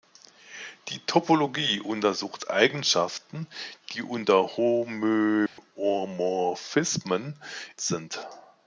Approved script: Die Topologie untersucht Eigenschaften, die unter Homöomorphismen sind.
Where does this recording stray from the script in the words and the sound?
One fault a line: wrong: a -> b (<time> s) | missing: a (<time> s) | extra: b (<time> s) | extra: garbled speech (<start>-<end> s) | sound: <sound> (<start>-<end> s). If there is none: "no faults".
sound: dropout (5.5-5.6 s)